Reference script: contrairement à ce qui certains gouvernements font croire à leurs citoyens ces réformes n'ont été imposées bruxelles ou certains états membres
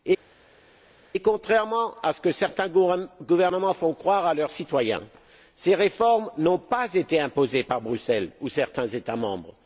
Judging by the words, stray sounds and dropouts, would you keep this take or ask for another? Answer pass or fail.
fail